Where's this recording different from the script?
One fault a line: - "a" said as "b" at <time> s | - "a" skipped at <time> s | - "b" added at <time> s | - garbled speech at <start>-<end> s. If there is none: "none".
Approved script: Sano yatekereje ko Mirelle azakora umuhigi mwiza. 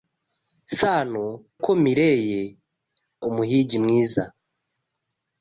- "yatekereje" skipped at 1.2 s
- "azakora" skipped at 2.4 s